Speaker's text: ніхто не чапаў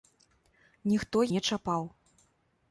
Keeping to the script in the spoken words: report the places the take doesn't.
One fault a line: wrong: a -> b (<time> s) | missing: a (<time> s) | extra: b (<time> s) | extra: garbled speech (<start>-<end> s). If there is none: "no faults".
no faults